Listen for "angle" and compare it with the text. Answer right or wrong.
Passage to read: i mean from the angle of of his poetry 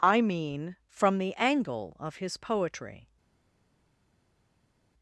right